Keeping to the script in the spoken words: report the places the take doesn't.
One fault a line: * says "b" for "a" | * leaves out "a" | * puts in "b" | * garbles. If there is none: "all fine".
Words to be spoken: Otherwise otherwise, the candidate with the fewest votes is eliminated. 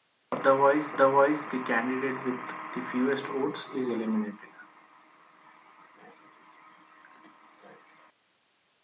all fine